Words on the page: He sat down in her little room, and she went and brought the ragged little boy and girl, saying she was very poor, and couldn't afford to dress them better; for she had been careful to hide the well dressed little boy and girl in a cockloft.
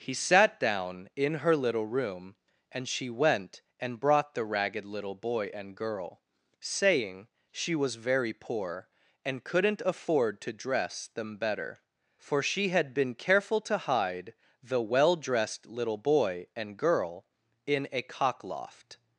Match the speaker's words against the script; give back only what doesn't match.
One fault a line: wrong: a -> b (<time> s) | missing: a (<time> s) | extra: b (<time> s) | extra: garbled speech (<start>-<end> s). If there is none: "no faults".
no faults